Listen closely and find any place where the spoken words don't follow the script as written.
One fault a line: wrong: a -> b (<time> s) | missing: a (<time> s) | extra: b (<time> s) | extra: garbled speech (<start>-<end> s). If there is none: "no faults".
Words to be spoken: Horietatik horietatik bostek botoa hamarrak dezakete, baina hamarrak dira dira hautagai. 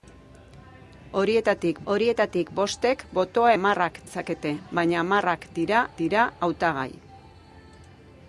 no faults